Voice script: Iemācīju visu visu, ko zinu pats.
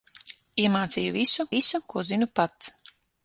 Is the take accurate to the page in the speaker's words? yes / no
yes